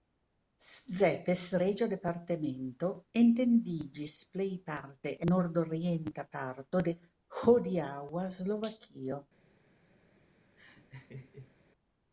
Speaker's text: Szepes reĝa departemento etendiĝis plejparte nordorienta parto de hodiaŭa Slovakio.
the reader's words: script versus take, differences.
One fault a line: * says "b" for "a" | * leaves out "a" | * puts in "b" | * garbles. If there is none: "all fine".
all fine